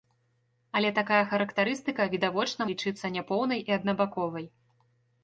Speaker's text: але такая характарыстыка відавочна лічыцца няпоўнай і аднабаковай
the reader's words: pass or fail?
pass